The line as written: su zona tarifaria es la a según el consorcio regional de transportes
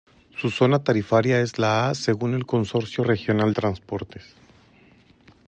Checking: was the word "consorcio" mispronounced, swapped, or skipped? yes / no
no